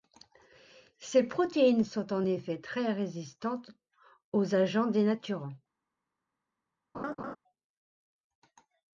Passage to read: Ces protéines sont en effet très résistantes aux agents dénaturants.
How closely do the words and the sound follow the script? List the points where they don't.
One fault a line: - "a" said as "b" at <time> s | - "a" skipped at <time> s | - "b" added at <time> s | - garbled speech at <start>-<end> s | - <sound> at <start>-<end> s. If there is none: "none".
- laugh at 6.9-7.4 s